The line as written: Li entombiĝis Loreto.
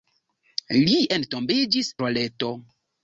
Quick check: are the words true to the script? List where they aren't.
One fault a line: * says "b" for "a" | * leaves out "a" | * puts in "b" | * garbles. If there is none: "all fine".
all fine